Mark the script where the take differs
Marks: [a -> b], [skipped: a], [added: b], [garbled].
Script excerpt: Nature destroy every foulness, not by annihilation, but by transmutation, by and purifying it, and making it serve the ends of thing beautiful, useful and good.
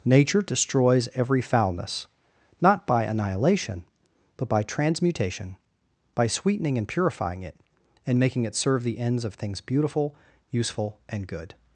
Nature [destroy -> destroys] every foulness, not by annihilation, but by transmutation, by [added: sweetening] and purifying it, and making it serve the ends of [thing -> things] beautiful, useful and good.